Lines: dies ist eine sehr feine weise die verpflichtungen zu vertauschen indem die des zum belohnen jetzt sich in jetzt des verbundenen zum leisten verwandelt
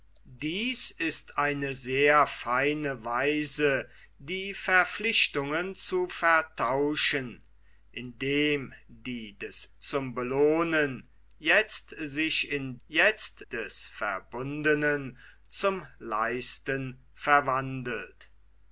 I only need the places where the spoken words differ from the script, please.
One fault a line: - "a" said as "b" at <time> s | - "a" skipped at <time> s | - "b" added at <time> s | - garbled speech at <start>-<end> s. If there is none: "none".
none